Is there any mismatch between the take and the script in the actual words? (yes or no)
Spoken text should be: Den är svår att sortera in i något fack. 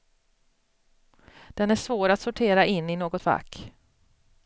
no